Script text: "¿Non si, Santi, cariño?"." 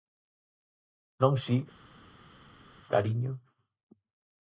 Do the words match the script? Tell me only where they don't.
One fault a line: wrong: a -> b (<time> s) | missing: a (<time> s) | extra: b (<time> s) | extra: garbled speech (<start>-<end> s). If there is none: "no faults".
missing: Santi (1.6 s)